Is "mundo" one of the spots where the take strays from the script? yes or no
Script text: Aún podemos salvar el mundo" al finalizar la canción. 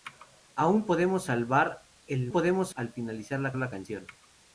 yes